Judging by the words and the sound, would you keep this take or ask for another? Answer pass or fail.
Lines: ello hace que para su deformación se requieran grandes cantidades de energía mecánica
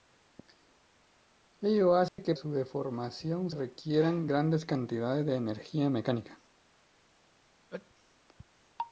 fail